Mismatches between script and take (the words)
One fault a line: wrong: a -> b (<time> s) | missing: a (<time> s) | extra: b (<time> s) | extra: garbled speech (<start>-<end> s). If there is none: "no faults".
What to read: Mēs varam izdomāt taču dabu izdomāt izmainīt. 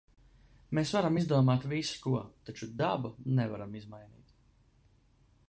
extra: visu ko (1.7 s)
wrong: izdomāt -> nevaram (3.4 s)